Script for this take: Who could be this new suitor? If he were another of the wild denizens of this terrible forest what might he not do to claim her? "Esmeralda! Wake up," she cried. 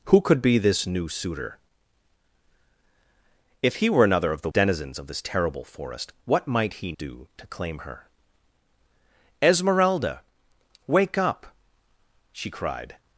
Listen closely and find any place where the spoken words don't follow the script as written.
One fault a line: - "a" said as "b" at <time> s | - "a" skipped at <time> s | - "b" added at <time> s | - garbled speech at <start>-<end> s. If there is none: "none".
- "wild" skipped at 4.5 s
- "not" skipped at 6.9 s